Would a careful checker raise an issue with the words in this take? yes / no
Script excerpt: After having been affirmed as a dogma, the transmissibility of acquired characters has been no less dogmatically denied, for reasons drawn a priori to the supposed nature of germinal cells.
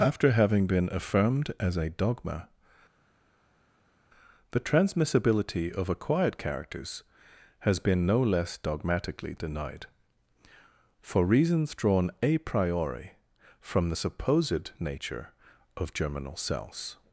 yes